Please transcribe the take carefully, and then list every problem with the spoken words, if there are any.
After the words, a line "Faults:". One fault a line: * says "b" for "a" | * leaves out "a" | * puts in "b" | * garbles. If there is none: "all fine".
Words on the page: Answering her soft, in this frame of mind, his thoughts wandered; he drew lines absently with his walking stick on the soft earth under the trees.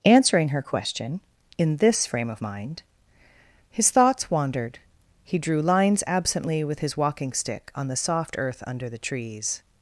Answering her question, in this frame of mind, his thoughts wandered; he drew lines absently with his walking stick on the soft earth under the trees.
Faults:
* says "question" for "soft"